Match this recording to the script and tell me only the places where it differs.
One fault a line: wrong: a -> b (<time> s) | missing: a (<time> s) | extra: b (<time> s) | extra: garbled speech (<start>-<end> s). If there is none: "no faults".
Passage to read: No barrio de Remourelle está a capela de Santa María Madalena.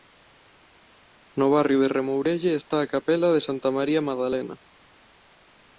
no faults